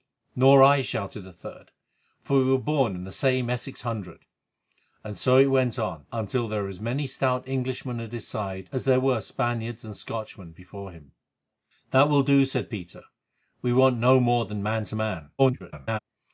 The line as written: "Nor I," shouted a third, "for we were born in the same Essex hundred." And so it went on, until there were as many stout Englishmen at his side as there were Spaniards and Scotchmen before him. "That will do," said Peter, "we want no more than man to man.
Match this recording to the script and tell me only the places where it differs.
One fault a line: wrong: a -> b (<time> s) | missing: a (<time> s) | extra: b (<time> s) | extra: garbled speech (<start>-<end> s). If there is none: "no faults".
extra: garbled speech (15.4-16.0 s)